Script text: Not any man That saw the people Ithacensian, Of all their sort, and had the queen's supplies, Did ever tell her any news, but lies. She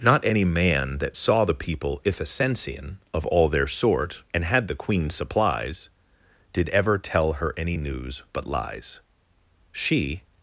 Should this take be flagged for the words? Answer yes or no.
no